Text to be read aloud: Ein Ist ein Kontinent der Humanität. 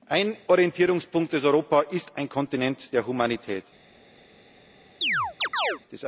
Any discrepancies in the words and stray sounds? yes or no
yes